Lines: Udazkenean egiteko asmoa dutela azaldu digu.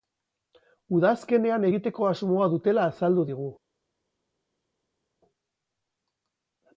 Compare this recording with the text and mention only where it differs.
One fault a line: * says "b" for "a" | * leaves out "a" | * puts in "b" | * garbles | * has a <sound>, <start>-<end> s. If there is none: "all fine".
all fine